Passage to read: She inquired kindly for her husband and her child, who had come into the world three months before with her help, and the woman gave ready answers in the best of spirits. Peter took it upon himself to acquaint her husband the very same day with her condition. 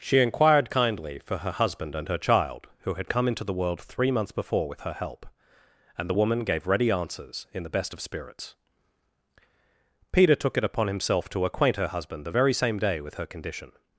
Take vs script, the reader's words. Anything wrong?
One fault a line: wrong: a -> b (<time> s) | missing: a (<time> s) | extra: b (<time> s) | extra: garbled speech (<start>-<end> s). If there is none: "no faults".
no faults